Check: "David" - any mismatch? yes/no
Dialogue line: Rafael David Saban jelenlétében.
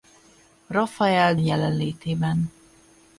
yes